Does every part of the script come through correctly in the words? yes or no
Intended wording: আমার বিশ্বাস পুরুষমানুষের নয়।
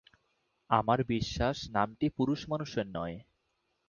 no